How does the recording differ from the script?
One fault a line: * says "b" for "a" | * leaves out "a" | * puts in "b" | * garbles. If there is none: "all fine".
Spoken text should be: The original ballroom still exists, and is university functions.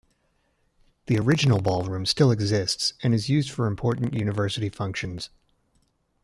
* puts in "used for important"